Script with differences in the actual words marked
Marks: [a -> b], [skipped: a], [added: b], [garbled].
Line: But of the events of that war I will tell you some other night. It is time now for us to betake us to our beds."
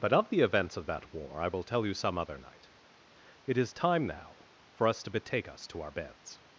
But of the events of that war I will tell you some other night. It is time now for us to betake us to our beds."